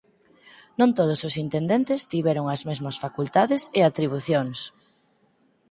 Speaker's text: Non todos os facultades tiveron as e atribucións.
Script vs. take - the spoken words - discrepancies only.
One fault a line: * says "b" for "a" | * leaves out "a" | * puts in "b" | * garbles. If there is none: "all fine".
* says "intendentes" for "facultades"
* puts in "mesmas facultades"